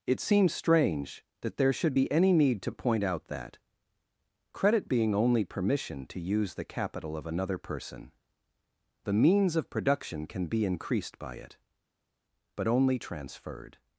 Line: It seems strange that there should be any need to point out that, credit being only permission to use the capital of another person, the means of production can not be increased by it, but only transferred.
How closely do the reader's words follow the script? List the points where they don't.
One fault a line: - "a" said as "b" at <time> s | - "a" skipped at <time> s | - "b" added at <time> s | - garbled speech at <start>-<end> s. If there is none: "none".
- "not" skipped at 10.5 s